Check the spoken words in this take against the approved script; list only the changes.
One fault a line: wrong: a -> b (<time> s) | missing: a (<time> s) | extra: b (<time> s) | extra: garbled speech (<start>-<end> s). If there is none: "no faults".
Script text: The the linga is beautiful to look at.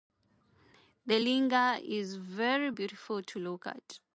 missing: the (1.2 s)
extra: very (2.1 s)